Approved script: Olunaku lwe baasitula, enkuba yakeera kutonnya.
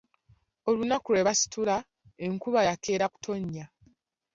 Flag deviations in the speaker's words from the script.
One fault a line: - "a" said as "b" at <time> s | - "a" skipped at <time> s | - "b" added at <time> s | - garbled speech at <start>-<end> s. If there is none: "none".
none